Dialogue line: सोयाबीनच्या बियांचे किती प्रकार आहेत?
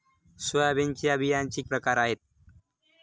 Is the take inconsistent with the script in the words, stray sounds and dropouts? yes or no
yes